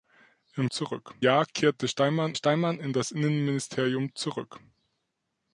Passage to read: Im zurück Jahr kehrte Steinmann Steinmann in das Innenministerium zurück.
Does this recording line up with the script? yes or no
yes